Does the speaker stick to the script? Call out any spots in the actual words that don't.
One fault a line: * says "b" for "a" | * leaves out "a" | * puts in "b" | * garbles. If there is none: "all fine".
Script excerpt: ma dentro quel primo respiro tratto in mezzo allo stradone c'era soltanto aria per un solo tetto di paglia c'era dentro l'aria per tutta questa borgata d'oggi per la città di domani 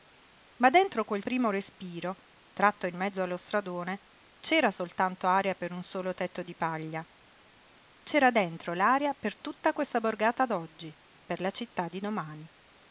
all fine